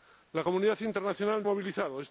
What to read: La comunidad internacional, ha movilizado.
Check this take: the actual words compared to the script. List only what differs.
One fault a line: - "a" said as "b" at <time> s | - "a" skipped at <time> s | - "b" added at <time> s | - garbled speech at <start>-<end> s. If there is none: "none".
none